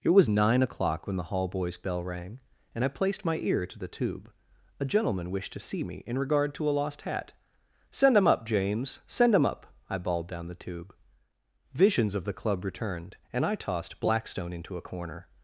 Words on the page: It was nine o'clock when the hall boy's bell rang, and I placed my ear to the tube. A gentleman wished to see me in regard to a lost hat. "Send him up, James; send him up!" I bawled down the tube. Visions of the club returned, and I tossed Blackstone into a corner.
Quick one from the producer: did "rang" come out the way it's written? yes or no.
yes